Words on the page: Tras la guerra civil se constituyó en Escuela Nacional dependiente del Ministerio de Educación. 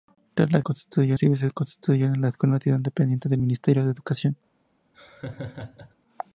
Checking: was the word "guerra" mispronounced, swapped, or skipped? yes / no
yes